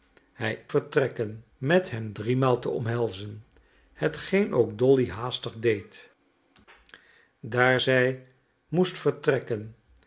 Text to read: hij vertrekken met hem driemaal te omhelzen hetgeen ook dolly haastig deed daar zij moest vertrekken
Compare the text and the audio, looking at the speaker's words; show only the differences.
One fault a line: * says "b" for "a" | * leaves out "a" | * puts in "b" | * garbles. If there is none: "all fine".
all fine